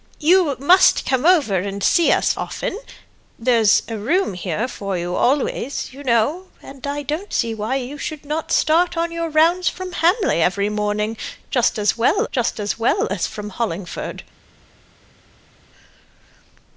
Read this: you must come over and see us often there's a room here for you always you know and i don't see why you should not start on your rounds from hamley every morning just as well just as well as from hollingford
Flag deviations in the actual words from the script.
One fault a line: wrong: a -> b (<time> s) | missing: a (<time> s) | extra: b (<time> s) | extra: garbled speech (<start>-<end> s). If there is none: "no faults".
no faults